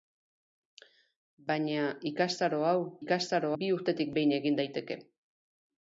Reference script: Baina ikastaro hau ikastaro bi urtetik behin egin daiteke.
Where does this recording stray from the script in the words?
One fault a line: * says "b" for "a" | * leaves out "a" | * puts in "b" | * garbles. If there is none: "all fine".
all fine